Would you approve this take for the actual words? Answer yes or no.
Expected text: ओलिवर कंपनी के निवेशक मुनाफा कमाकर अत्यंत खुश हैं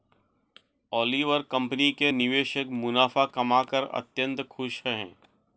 yes